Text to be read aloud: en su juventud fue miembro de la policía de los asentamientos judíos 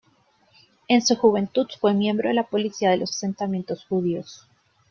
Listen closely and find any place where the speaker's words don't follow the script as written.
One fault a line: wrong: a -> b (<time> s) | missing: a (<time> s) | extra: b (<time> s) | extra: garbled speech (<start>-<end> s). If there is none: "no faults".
no faults